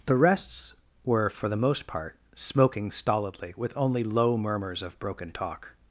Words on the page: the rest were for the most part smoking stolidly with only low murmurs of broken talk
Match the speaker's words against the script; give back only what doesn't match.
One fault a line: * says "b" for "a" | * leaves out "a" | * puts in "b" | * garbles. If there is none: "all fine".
* says "rests" for "rest"